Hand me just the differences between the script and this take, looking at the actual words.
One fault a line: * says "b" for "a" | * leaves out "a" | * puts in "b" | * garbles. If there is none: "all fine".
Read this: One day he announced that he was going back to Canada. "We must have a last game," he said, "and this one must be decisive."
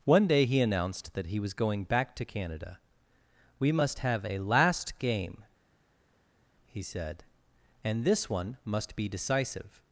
all fine